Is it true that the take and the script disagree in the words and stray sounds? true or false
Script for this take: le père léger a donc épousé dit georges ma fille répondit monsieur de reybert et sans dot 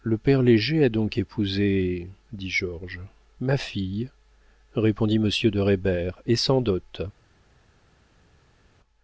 false